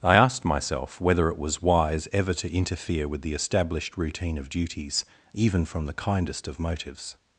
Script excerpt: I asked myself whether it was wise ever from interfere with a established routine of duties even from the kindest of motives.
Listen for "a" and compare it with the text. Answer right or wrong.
wrong